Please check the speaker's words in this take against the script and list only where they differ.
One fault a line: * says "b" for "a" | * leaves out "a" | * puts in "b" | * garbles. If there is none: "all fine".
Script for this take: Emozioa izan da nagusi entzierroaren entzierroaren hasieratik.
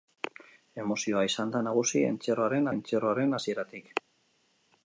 all fine